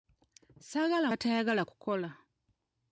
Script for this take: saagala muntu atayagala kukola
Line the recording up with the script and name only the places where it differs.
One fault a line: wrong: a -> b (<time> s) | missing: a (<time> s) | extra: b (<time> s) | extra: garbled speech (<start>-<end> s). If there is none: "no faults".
missing: muntu (1.1 s)